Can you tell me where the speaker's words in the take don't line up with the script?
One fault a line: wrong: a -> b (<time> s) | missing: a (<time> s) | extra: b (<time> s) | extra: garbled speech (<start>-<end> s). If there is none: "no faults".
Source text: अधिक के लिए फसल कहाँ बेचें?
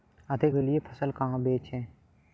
no faults